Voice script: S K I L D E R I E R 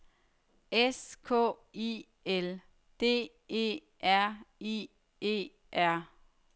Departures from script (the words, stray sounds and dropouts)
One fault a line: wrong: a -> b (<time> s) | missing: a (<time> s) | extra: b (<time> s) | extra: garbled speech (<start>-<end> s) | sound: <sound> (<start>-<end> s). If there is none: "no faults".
no faults